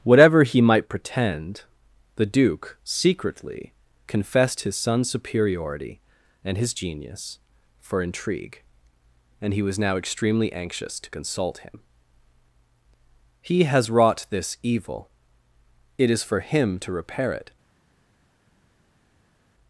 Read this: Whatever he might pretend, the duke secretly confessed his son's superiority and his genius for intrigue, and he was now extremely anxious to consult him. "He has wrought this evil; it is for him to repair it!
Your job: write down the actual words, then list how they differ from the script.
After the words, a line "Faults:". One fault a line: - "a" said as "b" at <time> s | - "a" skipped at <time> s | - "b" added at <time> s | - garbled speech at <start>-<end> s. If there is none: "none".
Whatever he might pretend, the duke secretly confessed his son's superiority and his genius for intrigue, and he was now extremely anxious to consult him. "He has wrought this evil; it is for him to repair it!
Faults:
none